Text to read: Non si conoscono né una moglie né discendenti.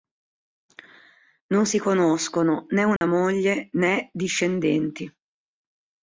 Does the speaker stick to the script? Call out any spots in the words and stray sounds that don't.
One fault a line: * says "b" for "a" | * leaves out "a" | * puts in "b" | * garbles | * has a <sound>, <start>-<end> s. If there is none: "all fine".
* has a dropout, 3.0-3.0 s